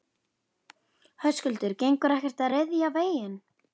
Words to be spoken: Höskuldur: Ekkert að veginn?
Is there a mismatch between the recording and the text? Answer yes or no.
yes